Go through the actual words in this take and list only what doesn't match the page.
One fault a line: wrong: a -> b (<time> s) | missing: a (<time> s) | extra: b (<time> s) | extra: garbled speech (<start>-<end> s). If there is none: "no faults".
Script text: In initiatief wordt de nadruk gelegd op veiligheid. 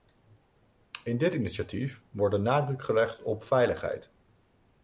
extra: dit (1.2 s)